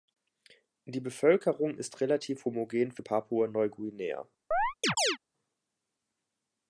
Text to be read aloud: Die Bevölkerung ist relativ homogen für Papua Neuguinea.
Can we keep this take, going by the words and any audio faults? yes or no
no